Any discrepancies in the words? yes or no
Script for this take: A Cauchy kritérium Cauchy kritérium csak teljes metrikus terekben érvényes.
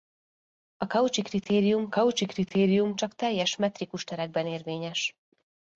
no